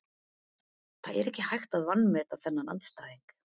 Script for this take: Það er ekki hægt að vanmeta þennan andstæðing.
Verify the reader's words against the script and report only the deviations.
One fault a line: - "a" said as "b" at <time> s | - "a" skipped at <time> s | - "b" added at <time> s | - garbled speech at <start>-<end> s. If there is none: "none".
none